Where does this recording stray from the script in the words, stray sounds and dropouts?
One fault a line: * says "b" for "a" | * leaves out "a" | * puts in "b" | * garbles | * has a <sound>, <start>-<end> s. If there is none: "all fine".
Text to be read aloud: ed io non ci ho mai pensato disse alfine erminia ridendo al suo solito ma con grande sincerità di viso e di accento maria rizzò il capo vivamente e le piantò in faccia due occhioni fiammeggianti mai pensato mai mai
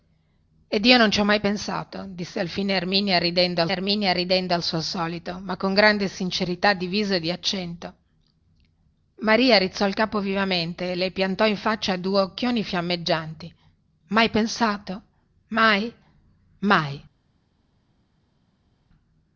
* puts in "erminia ridendo al"